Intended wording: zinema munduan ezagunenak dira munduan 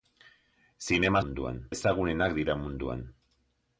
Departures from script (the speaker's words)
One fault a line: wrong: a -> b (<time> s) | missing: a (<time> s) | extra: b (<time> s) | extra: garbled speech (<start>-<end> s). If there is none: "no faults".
no faults